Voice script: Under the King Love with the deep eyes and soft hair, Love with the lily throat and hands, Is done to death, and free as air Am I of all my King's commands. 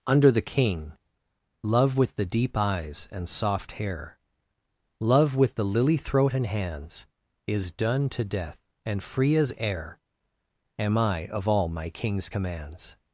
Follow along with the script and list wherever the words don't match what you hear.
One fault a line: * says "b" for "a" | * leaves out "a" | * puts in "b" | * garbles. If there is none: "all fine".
all fine